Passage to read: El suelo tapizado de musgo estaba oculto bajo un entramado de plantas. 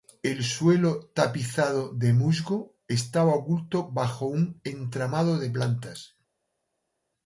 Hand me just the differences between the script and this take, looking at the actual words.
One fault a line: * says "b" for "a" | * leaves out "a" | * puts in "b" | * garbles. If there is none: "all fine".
all fine